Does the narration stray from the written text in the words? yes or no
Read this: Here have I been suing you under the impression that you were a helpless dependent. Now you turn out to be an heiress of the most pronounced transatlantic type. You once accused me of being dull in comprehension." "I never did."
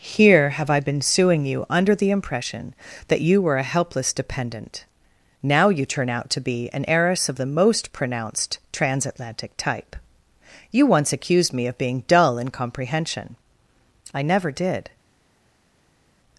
no